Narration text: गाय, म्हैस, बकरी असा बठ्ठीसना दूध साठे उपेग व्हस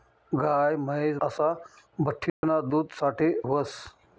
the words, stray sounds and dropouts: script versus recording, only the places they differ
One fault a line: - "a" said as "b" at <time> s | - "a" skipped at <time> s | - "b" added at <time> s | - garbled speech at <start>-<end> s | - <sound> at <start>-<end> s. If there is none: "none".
- "बकरी" skipped at 1.2 s
- dropout at 2.3-2.4 s
- "उपेग" skipped at 3.3 s